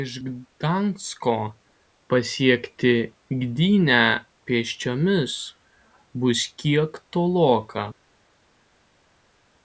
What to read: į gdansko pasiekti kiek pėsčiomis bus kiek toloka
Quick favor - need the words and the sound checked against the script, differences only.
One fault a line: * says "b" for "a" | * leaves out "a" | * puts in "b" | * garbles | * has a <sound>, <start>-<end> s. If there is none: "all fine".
* says "iš" for "į"
* says "gdynę" for "kiek"